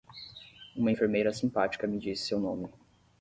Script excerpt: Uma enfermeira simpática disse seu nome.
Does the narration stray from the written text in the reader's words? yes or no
yes